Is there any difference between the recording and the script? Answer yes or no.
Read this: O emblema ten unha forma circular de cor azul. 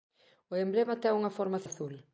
yes